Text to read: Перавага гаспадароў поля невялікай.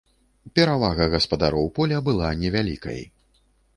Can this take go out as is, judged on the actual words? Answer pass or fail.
fail